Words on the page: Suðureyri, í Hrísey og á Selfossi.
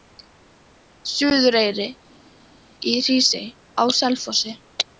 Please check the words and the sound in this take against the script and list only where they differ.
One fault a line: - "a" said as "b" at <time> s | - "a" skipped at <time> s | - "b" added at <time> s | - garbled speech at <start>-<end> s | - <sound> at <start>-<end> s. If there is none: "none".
- "og" skipped at 3.5 s